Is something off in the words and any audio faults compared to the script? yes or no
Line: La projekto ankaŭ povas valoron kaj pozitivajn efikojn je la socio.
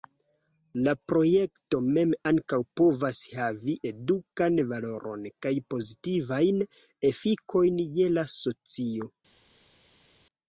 yes